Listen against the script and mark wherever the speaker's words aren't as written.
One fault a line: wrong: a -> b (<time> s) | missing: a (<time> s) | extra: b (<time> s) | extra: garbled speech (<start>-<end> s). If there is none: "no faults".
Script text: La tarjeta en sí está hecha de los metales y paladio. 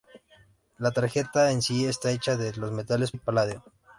no faults